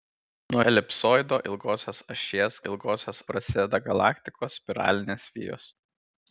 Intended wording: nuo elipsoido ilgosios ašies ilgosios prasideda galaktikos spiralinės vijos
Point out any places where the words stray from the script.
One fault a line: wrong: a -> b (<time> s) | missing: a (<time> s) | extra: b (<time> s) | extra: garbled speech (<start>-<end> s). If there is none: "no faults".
no faults